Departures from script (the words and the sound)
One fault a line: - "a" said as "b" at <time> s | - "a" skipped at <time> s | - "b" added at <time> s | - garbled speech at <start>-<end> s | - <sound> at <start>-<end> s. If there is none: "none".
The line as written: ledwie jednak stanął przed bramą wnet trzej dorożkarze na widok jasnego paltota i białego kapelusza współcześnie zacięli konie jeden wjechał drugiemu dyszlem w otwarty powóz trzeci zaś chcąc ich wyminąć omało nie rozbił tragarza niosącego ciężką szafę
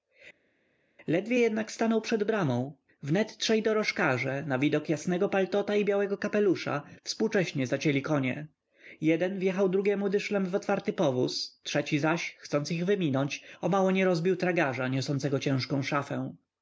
none